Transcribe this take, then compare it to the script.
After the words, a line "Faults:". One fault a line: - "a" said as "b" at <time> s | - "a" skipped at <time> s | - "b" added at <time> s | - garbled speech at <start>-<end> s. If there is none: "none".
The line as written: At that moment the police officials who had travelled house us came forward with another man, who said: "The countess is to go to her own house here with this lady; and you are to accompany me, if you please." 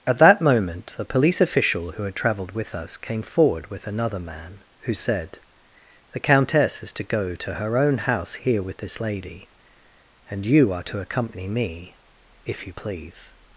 At that moment the police official who had travelled with us came forward with another man, who said: "The countess is to go to her own house here with this lady; and you are to accompany me, if you please."
Faults:
- "officials" said as "official" at 1.4 s
- "house" said as "with" at 2.5 s